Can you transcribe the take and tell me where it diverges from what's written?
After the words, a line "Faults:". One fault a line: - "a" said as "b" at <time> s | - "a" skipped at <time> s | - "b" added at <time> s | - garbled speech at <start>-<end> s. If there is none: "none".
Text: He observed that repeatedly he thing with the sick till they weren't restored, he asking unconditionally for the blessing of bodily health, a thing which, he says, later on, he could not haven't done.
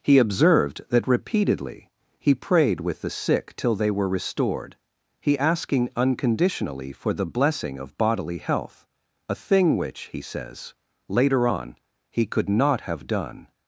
He observed that repeatedly he prayed with the sick till they were restored, he asking unconditionally for the blessing of bodily health, a thing which, he says, later on, he could not have done.
Faults:
- "thing" said as "prayed" at 2.4 s
- "weren't" said as "were" at 3.9 s
- "haven't" said as "have" at 12.8 s